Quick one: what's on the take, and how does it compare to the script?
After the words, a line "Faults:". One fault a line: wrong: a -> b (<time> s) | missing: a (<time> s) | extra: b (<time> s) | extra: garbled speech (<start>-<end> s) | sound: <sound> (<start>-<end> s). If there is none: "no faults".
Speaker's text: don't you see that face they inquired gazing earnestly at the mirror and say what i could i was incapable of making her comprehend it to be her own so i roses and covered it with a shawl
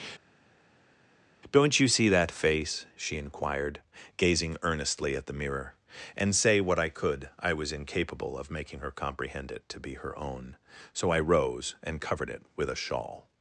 don't you see that face she inquired gazing earnestly at the mirror and say what i could i was incapable of making her comprehend it to be her own so i rose and covered it with a shawl
Faults:
wrong: they -> she (2.9 s)
wrong: roses -> rose (11.2 s)